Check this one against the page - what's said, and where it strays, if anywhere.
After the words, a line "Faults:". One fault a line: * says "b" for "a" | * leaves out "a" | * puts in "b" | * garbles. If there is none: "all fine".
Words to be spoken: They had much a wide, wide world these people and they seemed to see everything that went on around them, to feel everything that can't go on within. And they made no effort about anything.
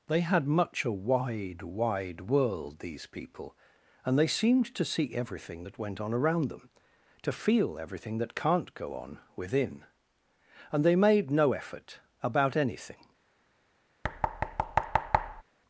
They had much a wide, wide world these people and they seemed to see everything that went on around them, to feel everything that can't go on within. And they made no effort about anything.
Faults:
all fine